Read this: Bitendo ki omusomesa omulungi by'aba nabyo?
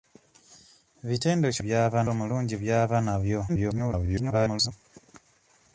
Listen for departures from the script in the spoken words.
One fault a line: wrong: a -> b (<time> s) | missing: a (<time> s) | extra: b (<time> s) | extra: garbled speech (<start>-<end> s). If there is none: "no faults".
wrong: omusomesa -> by'aba (1.6 s)
extra: garbled speech (3.5-4.7 s)